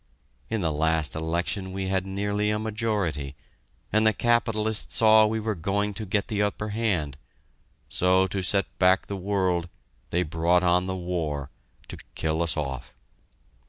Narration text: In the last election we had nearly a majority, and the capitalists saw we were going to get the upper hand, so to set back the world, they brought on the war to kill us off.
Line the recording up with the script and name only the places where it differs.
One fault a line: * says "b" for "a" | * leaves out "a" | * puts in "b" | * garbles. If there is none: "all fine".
all fine